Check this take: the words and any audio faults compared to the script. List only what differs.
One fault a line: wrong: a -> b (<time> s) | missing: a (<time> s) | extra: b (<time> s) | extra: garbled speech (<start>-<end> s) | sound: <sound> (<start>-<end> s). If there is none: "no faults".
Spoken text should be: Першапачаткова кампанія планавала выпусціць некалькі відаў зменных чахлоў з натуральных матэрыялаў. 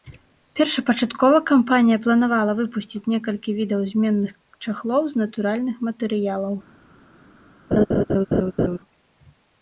sound: laugh (7.7-8.8 s)